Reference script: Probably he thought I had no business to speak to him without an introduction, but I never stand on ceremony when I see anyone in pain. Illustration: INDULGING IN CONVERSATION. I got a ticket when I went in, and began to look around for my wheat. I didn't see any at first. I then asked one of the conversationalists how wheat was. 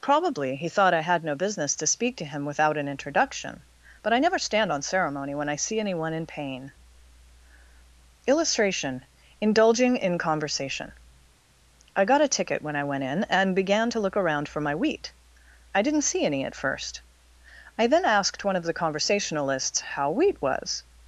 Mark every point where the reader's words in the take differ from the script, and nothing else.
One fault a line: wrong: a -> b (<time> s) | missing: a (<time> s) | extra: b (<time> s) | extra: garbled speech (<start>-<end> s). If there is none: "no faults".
no faults